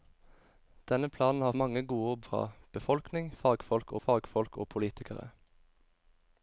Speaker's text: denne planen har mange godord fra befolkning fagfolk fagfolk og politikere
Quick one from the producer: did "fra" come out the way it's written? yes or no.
yes